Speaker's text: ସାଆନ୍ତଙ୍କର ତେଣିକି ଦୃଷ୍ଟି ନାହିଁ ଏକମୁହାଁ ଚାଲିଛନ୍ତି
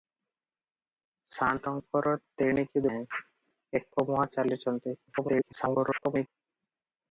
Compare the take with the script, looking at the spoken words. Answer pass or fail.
fail